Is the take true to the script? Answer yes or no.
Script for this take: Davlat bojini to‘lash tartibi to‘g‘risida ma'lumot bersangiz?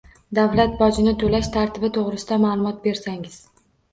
yes